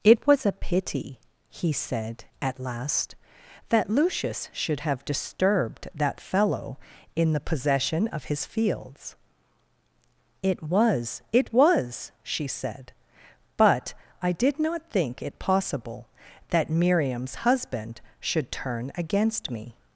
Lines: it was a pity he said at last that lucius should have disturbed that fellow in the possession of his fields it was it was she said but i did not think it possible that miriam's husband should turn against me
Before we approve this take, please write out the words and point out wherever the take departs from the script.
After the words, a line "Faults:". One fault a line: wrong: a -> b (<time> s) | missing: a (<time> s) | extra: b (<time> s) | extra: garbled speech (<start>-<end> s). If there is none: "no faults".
it was a pity he said at last that lucius should have disturbed that fellow in the possession of his fields it was it was she said but i did not think it possible that miriam's husband should turn against me
Faults:
no faults